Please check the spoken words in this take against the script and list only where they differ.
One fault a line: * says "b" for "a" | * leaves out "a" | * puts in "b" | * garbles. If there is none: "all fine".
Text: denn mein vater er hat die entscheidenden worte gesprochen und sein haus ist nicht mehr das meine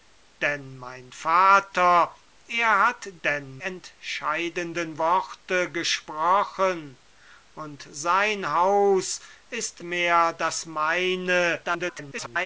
* says "denn" for "die"
* leaves out "nicht"
* garbles